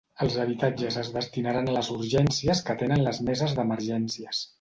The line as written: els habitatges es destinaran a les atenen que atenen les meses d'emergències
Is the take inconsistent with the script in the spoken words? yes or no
yes